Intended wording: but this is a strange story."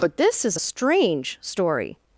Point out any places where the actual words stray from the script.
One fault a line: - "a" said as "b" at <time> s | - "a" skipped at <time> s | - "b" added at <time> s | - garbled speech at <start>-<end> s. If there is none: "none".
none